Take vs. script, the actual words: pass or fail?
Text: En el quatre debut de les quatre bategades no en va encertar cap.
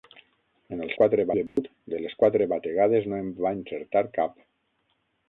pass